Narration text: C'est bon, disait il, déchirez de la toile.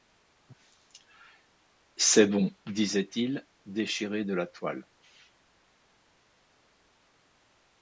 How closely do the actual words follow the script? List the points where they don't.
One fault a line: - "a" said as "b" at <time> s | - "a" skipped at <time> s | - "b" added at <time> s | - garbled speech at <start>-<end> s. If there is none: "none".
none